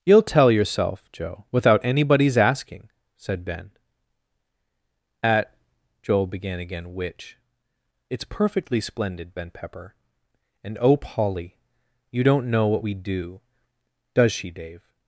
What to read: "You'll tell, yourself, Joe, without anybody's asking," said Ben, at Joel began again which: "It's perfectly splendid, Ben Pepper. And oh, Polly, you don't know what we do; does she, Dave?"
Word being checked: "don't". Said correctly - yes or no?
yes